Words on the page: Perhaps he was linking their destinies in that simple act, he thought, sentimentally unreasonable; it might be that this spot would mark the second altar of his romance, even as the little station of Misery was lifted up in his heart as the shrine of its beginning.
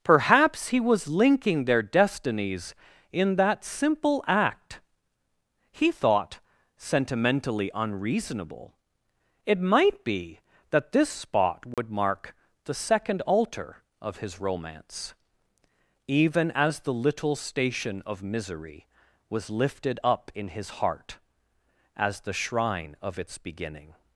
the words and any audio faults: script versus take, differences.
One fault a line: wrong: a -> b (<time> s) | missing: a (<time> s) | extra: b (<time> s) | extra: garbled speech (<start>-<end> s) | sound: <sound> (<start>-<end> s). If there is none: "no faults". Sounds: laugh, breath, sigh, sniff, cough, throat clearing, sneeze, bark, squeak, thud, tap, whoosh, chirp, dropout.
sound: dropout (11.7-11.8 s)